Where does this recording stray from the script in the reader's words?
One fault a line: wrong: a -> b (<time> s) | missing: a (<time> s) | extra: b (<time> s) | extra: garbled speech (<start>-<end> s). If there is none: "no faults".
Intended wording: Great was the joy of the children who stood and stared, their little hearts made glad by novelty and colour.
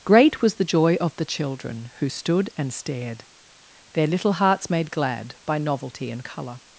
no faults